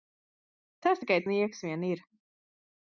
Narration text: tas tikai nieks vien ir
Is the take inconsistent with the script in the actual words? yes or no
no